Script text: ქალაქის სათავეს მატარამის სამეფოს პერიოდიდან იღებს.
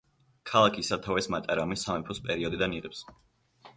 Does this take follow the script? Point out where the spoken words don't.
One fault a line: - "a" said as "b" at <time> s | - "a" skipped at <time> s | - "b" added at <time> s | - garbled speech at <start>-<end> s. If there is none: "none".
none